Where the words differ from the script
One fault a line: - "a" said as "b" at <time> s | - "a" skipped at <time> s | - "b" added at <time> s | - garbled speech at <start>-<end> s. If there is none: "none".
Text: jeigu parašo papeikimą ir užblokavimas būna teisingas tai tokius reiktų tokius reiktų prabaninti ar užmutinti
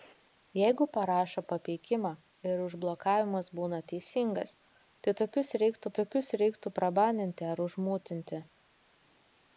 none